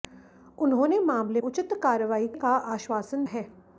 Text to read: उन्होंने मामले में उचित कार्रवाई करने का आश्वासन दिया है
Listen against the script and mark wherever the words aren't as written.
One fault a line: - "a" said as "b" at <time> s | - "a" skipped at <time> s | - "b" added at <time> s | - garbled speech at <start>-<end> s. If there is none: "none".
- "में" skipped at 1.4 s
- "करने" skipped at 2.3 s
- "दिया" skipped at 3.2 s